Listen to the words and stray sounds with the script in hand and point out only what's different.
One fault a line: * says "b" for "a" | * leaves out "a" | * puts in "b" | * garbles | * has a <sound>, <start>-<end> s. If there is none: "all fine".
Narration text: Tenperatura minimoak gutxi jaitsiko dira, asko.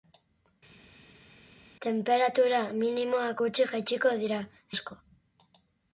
all fine